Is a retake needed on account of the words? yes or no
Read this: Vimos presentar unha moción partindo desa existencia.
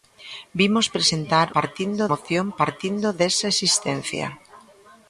yes